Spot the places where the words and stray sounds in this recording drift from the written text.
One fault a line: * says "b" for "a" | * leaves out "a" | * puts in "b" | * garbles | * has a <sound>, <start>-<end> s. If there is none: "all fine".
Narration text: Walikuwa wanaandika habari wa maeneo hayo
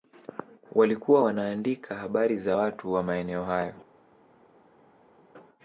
* puts in "za watu"